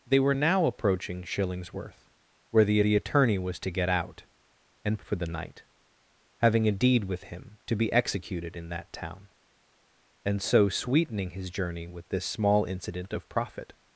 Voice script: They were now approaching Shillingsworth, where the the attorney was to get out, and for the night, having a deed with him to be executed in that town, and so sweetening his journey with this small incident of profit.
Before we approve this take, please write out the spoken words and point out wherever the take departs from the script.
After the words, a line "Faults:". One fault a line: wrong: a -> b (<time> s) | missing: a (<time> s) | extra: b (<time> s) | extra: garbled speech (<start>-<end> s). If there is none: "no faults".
They were now approaching Shillingsworth, where the the attorney was to get out, and for the night, having a deed with him to be executed in that town, and so sweetening his journey with this small incident of profit.
Faults:
no faults